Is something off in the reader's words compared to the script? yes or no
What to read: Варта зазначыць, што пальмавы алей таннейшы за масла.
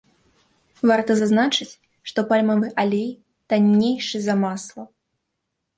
no